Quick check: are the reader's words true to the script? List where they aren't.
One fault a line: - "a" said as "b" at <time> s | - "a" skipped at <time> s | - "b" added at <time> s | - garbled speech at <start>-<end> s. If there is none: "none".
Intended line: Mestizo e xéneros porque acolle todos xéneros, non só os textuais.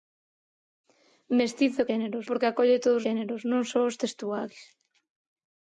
none